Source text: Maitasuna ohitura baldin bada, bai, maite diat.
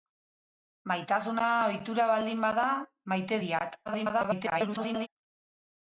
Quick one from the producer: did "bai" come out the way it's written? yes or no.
no